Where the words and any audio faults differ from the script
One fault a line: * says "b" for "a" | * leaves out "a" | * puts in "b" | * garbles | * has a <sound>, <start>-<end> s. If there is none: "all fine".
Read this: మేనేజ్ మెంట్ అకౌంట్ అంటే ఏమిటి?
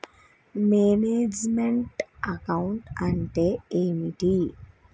all fine